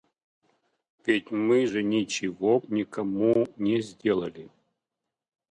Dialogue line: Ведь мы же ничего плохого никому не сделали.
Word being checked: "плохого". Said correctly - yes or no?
no